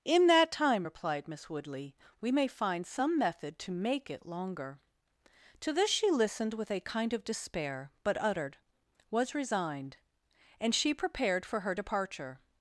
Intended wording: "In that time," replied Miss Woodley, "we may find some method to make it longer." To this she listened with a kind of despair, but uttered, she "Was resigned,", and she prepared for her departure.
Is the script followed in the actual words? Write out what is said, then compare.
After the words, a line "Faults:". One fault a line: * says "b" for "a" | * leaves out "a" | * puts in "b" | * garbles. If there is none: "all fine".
"In that time," replied Miss Woodley, "we may find some method to make it longer." To this she listened with a kind of despair, but uttered, "Was resigned,", and she prepared for her departure.
Faults:
* leaves out "she"